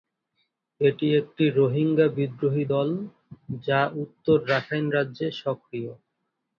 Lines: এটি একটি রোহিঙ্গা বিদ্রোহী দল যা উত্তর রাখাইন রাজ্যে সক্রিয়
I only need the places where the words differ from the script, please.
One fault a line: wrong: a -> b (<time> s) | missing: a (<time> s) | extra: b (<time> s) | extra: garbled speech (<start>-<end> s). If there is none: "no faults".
no faults